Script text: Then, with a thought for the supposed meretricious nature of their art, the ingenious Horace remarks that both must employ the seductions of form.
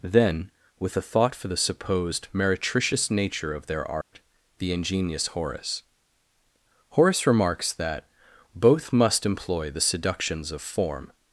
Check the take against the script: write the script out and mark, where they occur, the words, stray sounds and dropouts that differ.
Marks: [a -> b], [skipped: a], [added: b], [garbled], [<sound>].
Then, with a thought for the supposed meretricious nature of their art, [dropout] the ingenious Horace [added: Horace] remarks that both must employ the seductions of form.